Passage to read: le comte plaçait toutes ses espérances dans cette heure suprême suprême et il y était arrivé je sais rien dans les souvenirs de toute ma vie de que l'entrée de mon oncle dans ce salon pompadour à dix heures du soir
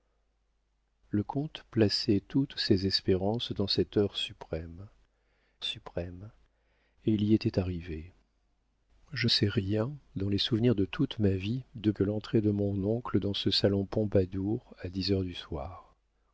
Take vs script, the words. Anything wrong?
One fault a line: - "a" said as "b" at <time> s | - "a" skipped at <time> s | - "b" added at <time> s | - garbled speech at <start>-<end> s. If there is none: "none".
none